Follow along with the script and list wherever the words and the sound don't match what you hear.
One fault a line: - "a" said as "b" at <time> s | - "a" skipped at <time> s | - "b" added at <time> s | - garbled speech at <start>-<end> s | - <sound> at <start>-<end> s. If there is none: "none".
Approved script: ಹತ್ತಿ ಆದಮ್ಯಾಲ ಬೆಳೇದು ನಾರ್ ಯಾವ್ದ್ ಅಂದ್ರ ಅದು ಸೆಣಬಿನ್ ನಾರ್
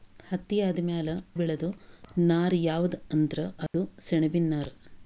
- dropout at 3.7-3.7 s